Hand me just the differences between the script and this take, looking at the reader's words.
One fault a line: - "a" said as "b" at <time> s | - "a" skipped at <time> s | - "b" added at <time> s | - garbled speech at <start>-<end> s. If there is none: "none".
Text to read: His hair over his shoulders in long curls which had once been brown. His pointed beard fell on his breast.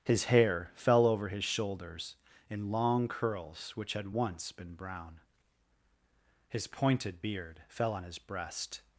- "fell" added at 0.8 s